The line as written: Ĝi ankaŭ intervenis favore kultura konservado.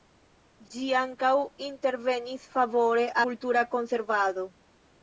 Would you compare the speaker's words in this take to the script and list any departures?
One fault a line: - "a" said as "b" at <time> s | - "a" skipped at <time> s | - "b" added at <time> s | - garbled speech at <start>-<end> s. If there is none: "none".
none